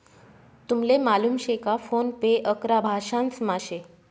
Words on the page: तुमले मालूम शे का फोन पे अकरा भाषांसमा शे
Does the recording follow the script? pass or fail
pass